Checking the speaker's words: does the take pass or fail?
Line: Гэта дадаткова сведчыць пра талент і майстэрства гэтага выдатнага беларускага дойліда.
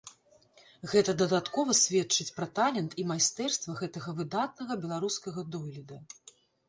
pass